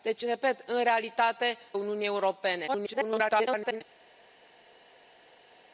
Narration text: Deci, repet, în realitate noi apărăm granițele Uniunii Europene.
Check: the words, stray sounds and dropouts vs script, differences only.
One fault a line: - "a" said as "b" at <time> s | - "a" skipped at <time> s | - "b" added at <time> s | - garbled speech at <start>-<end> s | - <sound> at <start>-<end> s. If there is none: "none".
- "noi apărăm granițele" skipped at 1.6 s
- garbled speech at 2.7-3.8 s